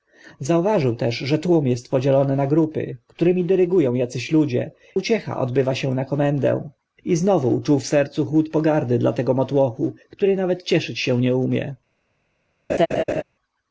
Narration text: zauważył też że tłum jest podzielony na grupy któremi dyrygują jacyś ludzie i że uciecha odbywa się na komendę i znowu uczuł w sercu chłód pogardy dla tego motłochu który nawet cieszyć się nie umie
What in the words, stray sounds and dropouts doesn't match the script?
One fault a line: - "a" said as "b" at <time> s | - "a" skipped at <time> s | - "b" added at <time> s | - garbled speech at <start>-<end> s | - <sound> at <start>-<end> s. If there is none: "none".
- "i że" skipped at 4.7 s
- laugh at 12.7-13.2 s